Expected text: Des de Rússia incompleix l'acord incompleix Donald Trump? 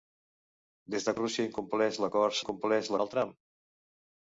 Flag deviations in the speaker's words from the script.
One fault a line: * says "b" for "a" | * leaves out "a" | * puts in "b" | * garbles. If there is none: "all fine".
all fine